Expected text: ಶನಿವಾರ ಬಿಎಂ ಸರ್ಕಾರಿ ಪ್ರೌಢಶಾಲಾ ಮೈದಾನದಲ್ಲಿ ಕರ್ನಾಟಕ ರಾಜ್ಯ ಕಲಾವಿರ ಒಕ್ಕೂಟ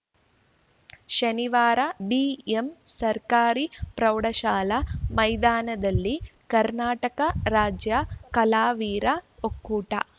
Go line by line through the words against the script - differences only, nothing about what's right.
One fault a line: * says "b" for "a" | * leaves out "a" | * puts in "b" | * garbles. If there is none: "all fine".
all fine